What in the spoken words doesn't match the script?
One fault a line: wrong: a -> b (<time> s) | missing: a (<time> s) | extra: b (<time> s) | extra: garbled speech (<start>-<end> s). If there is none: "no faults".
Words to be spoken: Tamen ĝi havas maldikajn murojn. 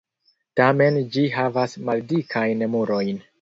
no faults